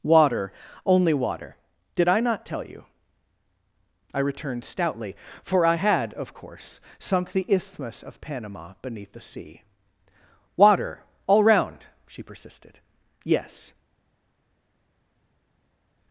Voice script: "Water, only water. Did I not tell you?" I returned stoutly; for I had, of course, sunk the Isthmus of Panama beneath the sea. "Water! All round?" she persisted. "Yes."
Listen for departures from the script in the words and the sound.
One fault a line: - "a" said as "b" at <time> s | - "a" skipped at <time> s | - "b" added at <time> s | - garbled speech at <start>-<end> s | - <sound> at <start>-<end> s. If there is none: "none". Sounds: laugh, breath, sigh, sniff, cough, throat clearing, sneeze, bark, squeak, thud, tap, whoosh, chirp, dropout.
none